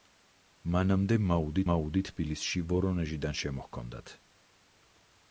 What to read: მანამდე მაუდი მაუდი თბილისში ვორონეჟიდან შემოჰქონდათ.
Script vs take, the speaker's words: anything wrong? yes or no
no